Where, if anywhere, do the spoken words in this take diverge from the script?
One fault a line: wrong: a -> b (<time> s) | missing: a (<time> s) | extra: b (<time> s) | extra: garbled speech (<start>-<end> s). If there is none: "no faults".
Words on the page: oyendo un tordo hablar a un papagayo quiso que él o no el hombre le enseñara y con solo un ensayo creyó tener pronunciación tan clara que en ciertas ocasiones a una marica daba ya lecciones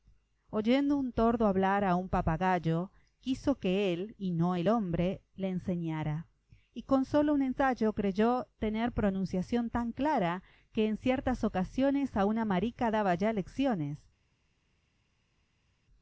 wrong: o -> y (4.2 s)